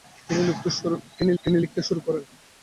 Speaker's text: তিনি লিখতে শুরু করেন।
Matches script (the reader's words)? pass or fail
fail